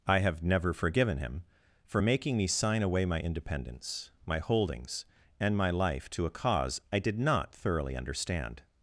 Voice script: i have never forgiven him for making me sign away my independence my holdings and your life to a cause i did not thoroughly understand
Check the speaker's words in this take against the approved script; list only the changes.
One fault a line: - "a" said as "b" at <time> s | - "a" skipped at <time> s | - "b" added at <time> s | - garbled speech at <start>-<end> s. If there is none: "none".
- "your" said as "my" at 5.6 s